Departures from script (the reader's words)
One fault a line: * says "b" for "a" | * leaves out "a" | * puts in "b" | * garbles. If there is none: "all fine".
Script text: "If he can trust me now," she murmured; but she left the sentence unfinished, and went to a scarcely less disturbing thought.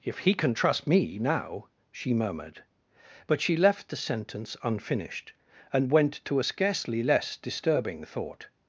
all fine